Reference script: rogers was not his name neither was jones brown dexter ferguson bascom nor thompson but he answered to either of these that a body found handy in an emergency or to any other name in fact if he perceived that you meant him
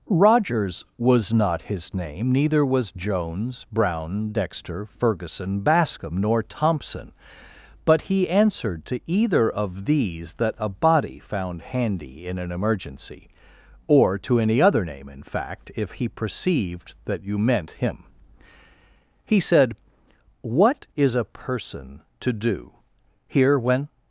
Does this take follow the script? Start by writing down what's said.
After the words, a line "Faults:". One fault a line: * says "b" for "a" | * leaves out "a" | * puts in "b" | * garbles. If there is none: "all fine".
rogers was not his name neither was jones brown dexter ferguson bascom nor thompson but he answered to either of these that a body found handy in an emergency or to any other name in fact if he perceived that you meant him he said what is a person to do here when
Faults:
* puts in "he said what is a person to do here when"